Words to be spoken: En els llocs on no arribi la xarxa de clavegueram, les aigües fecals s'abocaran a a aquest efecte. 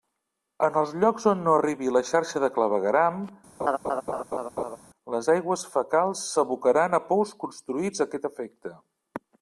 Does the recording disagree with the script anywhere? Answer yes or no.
yes